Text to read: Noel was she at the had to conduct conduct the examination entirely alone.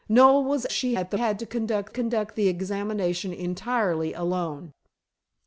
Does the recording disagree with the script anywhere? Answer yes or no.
no